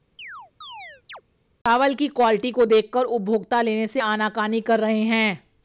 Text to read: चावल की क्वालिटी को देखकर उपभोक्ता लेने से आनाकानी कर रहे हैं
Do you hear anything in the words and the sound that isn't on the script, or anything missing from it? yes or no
yes